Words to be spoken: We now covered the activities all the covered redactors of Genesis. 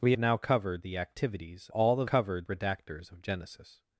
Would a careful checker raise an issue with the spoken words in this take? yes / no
no